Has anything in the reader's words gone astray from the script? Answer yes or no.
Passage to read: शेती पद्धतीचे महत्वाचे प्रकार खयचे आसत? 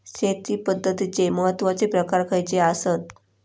no